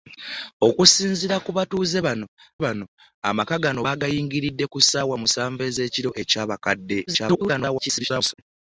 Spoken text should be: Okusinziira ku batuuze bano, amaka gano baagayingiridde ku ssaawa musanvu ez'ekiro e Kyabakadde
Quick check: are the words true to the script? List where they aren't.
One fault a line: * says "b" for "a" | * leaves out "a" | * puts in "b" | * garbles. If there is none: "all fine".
* puts in "bano"
* garbles